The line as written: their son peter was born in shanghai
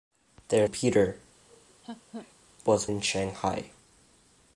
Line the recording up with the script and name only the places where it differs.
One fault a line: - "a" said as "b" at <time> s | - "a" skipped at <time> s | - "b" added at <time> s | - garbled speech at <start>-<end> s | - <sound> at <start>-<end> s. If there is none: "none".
- "son" skipped at 0.7 s
- laugh at 1.5-2.3 s
- "born" skipped at 2.9 s